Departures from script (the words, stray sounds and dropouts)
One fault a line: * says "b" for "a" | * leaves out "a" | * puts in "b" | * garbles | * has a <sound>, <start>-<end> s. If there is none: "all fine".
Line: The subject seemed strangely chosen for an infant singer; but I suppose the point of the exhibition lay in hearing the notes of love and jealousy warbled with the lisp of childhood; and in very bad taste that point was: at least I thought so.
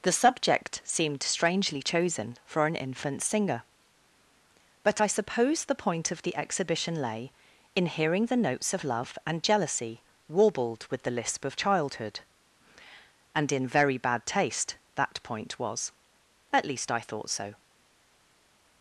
all fine